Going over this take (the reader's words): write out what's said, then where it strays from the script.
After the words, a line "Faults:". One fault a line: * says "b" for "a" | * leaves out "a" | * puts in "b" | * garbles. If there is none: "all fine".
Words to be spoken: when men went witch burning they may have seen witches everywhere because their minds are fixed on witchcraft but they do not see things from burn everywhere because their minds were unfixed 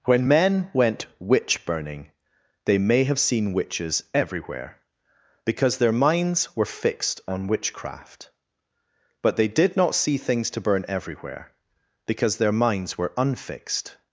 when men went witch burning they may have seen witches everywhere because their minds were fixed on witchcraft but they did not see things to burn everywhere because their minds were unfixed
Faults:
* says "were" for "are"
* says "did" for "do"
* says "to" for "from"